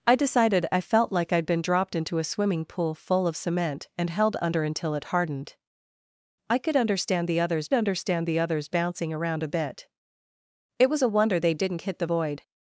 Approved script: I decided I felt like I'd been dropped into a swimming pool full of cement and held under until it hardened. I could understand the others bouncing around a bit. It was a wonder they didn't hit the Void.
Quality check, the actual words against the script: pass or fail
fail